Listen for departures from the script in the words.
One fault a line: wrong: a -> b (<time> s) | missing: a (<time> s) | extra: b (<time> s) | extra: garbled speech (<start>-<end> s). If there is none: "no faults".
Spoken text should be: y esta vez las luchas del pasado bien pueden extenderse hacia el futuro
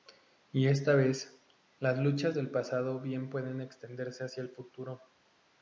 no faults